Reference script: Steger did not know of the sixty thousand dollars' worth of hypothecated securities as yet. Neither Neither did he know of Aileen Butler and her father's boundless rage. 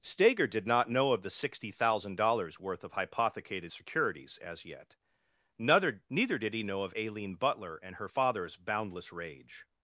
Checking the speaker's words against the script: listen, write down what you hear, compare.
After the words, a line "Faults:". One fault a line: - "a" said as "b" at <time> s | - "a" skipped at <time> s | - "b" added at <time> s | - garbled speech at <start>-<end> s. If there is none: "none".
Steger did not know of the sixty thousand dollars' worth of hypothecated securities as yet. Neither Neither did he know of Aileen Butler and her father's boundless rage.
Faults:
none